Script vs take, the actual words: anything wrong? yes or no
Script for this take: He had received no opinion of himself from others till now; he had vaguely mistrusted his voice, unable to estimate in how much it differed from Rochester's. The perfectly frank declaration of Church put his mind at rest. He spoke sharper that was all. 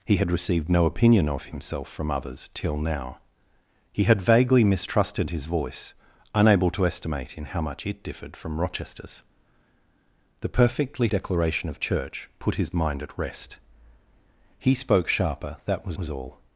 yes